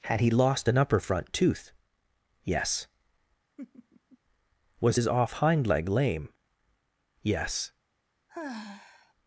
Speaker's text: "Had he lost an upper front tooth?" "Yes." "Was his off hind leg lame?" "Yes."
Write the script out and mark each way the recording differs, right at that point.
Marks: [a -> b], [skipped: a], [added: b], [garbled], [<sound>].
"Had he lost an upper front tooth?" "Yes." [laugh] "Was his off hind leg lame?" "Yes." [sigh]